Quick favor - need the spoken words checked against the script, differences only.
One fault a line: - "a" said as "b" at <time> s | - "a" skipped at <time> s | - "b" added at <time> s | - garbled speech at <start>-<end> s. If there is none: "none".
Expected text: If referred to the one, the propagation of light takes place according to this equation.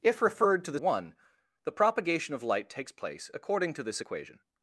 none